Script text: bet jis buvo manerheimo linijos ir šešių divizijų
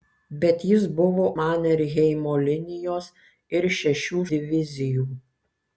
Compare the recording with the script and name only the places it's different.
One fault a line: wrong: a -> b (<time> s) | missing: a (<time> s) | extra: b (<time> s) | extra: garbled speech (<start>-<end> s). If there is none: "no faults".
no faults